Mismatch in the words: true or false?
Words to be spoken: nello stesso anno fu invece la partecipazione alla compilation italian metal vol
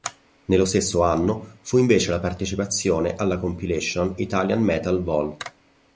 false